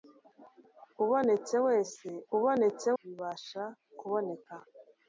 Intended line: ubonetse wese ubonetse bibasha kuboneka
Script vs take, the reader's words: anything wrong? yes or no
no